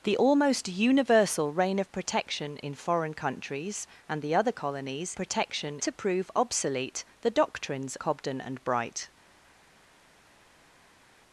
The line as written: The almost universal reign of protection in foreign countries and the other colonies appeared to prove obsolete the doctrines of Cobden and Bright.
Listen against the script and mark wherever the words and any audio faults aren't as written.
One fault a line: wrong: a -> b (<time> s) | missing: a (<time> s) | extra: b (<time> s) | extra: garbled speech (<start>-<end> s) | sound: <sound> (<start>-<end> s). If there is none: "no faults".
wrong: appeared -> protection (5.1 s)
missing: of (7.9 s)